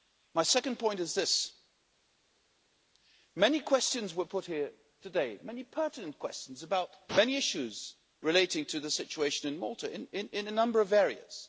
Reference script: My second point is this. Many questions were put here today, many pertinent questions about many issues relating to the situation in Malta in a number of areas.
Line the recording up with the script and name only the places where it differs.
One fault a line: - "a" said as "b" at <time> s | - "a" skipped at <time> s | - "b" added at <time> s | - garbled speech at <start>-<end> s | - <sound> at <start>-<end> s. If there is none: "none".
none